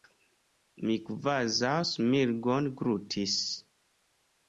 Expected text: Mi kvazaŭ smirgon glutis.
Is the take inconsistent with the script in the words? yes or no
no